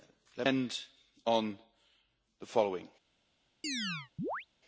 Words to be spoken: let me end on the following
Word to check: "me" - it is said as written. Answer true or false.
false